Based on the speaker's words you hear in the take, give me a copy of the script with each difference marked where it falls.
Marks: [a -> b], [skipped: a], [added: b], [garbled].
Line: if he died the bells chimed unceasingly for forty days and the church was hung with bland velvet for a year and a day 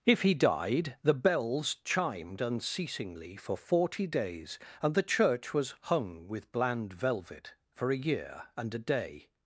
if he died the bells chimed unceasingly for forty days and the church was hung with bland velvet for a year and a day